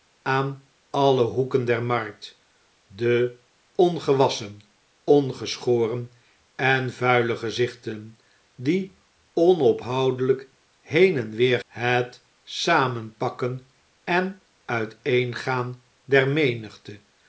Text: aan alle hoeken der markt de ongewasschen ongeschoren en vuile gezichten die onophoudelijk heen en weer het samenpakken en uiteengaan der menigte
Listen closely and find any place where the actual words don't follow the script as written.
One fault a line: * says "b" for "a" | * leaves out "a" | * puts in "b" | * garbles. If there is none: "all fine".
all fine